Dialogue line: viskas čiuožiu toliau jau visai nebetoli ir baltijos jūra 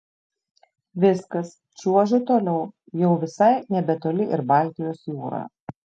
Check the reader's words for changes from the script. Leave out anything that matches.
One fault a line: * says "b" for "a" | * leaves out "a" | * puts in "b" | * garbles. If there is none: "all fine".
all fine